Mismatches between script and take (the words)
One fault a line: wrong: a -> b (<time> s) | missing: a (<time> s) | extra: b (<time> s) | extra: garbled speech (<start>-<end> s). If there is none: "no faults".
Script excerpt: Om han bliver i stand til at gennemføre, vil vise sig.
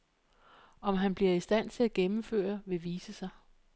no faults